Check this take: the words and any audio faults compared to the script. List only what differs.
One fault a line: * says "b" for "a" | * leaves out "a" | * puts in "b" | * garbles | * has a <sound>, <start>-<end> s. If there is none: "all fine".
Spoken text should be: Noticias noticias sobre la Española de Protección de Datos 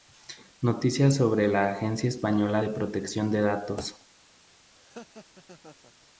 * leaves out "noticias"
* puts in "Agencia"
* has a laugh, 4.7-5.9 s